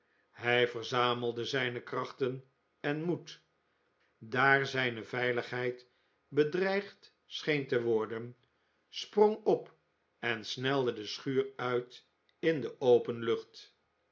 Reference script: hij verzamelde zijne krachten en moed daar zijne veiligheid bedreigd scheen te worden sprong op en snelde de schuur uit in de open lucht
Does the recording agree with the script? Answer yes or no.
yes